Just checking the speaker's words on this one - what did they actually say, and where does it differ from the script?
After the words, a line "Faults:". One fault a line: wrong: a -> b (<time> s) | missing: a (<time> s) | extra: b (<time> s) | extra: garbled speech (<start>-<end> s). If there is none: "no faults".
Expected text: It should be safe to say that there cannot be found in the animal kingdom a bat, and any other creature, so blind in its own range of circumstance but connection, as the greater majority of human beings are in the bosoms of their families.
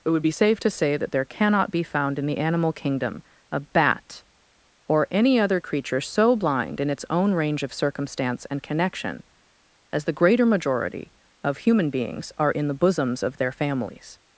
It would be safe to say that there cannot be found in the animal kingdom a bat, or any other creature, so blind in its own range of circumstance and connection, as the greater majority of human beings are in the bosoms of their families.
Faults:
wrong: should -> would (0.1 s)
wrong: and -> or (4.9 s)
wrong: but -> and (8.5 s)